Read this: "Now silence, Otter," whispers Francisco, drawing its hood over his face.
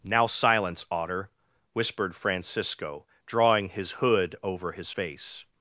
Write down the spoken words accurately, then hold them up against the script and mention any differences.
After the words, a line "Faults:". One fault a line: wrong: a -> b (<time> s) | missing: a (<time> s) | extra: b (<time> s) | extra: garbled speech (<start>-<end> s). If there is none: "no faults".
"Now silence, Otter," whispered Francisco, drawing his hood over his face.
Faults:
wrong: whispers -> whispered (1.7 s)
wrong: its -> his (3.7 s)